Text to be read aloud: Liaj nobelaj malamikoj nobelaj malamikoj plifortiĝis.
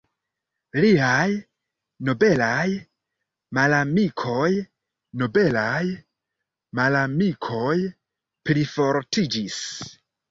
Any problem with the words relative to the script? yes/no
no